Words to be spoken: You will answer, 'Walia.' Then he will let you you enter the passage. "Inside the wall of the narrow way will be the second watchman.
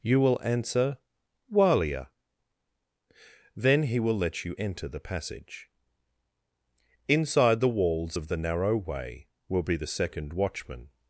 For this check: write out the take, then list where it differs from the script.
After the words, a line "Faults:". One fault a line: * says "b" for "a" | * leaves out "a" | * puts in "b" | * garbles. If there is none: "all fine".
You will answer, 'Walia.' Then he will let you enter the passage. "Inside the walls of the narrow way will be the second watchman.
Faults:
* leaves out "you"
* says "walls" for "wall"